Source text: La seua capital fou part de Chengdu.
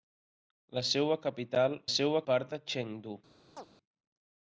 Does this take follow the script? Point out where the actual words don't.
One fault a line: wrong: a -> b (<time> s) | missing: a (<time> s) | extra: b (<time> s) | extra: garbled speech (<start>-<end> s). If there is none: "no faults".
wrong: fou -> seua (2.0 s)